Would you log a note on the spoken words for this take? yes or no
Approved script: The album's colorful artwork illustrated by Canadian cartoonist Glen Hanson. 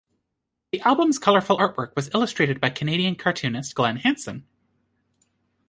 yes